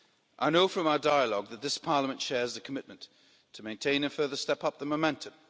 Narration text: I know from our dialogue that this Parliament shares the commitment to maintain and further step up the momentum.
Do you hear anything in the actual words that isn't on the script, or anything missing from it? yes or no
no